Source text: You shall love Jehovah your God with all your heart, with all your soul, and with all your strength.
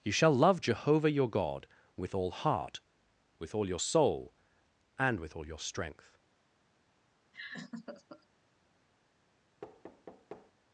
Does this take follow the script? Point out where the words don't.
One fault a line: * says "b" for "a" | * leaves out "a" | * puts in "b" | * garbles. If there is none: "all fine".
* leaves out "your"